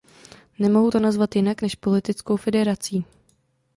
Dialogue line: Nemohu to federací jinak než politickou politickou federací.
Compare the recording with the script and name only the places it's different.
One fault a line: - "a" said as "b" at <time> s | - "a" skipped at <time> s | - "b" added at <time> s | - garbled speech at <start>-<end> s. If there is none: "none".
- "federací" said as "nazvat" at 1.0 s
- "politickou" skipped at 2.4 s